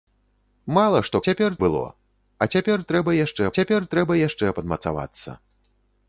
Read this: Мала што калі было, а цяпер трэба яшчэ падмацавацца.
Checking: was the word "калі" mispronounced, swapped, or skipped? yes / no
yes